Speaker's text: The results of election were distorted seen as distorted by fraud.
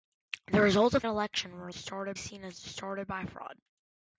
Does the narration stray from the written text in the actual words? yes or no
no